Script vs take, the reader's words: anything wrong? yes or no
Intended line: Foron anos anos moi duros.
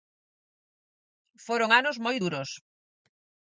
yes